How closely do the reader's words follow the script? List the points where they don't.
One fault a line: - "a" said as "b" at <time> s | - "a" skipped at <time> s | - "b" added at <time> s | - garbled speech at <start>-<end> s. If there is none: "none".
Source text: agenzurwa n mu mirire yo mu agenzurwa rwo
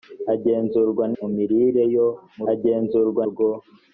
none